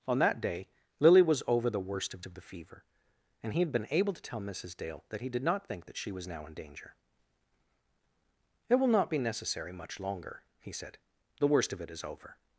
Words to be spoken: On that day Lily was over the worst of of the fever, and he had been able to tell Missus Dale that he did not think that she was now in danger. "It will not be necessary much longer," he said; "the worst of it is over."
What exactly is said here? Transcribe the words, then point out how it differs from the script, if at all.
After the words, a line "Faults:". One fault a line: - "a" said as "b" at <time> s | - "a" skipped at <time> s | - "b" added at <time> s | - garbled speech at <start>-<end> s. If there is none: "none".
On that day Lily was over the worst of of the fever, and he had been able to tell Missus Dale that he did not think that she was now in danger. "It will not be necessary much longer," he said; "the worst of it is over."
Faults:
none